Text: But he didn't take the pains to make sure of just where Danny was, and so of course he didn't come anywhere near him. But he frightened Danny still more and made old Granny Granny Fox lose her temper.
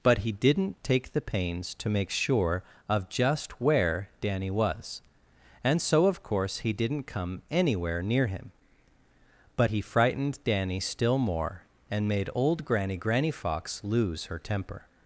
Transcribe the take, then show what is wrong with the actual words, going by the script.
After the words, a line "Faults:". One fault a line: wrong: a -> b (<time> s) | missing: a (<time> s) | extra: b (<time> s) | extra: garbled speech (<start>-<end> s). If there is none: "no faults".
But he didn't take the pains to make sure of just where Danny was, and so of course he didn't come anywhere near him. But he frightened Danny still more and made old Granny Granny Fox lose her temper.
Faults:
no faults